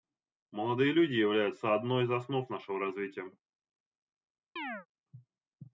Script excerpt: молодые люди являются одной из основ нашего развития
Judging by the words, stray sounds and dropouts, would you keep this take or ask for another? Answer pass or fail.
fail